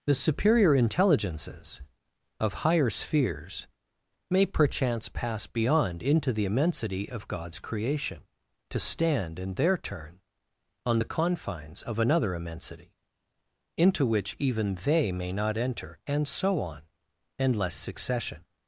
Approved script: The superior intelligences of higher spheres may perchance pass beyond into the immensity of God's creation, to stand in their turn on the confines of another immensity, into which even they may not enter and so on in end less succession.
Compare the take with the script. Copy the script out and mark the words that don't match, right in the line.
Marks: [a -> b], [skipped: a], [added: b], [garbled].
The superior intelligences of higher spheres may perchance pass beyond into the immensity of God's creation, to stand in their turn on the confines of another immensity, into which even they may not enter and so on [in end less -> endless] succession.